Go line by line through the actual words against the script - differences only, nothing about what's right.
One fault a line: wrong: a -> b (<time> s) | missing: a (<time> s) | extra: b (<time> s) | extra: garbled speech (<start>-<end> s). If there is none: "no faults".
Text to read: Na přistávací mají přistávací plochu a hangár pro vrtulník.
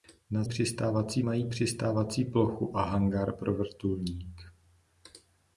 no faults